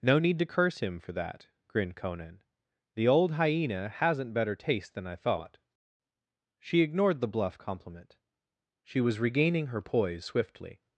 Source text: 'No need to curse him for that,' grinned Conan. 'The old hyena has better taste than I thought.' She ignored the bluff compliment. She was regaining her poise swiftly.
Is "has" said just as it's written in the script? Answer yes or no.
no